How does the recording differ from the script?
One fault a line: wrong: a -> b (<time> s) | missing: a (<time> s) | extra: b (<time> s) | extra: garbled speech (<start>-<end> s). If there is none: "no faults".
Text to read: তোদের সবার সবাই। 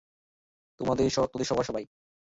no faults